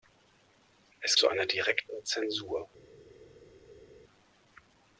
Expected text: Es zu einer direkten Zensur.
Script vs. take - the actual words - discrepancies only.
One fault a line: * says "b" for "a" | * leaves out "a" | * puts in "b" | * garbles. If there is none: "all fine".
all fine